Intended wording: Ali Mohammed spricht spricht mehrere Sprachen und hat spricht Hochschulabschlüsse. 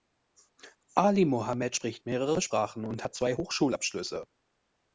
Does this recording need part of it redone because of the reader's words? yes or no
yes